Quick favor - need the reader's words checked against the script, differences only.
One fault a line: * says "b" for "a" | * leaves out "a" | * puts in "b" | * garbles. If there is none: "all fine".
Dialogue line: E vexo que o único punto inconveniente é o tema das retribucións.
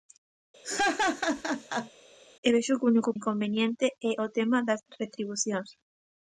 * leaves out "punto"